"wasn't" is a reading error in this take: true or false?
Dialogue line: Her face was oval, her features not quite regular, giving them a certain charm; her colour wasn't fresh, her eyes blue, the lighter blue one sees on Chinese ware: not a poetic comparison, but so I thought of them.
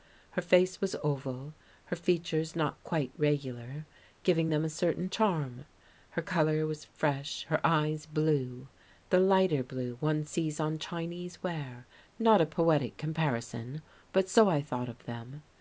true